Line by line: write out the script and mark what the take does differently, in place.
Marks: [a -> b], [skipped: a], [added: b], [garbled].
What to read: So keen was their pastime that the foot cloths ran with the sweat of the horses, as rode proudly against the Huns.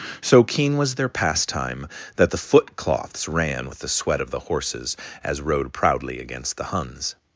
So keen was their pastime that the foot cloths ran with the sweat of the horses, as rode proudly against the Huns.